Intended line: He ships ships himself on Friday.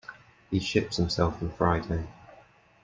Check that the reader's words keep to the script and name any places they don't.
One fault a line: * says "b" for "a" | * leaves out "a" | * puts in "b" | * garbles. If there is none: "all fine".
* leaves out "ships"